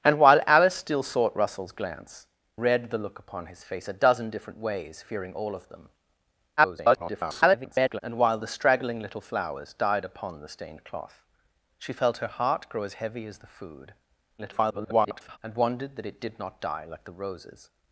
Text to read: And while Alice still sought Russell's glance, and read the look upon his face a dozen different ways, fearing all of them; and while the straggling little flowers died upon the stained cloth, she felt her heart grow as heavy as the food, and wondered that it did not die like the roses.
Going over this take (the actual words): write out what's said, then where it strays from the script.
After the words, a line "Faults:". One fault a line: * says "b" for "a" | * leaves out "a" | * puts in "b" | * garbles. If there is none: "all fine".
And while Alice still sought Russell's glance, read the look upon his face a dozen different ways, fearing all of them; [garbled] and while the straggling little flowers died upon the stained cloth, she felt her heart grow as heavy as the food, [garbled] and wondered that it did not die like the roses.
Faults:
* leaves out "and"
* garbles
* garbles